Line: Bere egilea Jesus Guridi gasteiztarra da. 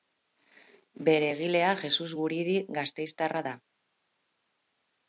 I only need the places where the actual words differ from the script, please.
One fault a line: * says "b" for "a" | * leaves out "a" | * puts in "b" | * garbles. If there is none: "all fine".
all fine